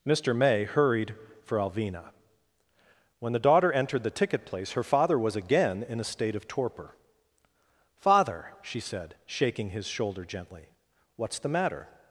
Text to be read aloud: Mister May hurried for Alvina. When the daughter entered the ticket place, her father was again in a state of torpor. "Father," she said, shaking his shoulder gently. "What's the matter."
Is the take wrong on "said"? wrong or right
right